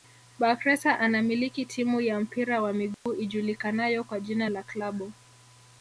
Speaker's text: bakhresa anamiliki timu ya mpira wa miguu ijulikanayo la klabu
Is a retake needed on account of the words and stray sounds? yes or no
yes